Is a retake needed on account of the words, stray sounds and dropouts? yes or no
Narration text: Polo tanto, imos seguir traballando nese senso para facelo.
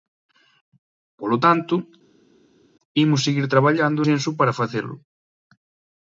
yes